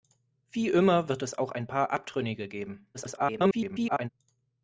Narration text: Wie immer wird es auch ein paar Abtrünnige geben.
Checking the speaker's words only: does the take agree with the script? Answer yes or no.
no